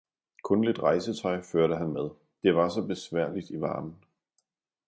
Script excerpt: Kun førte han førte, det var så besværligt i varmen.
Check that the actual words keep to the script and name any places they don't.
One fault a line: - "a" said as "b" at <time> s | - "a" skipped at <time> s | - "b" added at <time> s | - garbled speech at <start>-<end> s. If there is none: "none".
- "lidt rejsetøj" added at 0.6 s
- "førte" said as "med" at 1.9 s